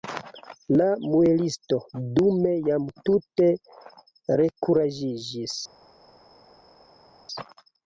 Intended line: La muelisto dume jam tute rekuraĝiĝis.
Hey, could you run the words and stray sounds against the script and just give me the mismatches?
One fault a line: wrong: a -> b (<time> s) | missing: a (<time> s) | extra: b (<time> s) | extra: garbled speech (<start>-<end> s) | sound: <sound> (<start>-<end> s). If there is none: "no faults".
no faults